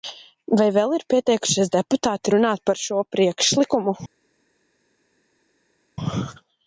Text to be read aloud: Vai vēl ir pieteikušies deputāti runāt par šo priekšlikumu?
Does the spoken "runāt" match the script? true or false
true